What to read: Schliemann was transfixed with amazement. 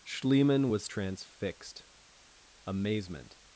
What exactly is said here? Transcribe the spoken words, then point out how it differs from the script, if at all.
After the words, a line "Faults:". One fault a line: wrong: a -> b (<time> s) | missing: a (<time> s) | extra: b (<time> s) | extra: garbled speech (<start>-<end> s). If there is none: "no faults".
Schliemann was transfixed amazement.
Faults:
missing: with (1.8 s)